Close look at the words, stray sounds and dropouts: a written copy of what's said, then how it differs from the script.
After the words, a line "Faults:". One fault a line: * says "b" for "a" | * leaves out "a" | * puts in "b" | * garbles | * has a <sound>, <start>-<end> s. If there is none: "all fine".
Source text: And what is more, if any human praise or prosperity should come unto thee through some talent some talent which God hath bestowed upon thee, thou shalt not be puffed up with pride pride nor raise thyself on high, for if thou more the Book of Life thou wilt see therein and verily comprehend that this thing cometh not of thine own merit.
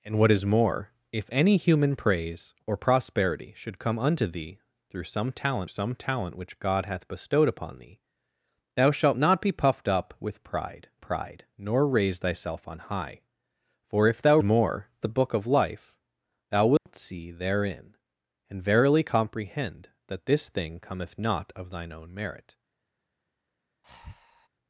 And what is more, if any human praise or prosperity should come unto thee through some talent some talent which God hath bestowed upon thee, thou shalt not be puffed up with pride pride nor raise thyself on high, for if thou more the Book of Life thou wilt see therein and verily comprehend that this thing cometh not of thine own merit.
Faults:
* has a dropout, 16.8-16.9 s
* has a breath, 23.8-24.5 s